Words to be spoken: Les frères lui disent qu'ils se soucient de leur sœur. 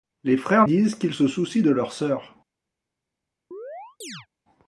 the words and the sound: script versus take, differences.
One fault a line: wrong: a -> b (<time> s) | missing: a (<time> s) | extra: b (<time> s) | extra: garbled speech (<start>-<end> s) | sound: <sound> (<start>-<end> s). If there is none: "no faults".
missing: lui (0.7 s)
sound: chirp (3.5-4.3 s)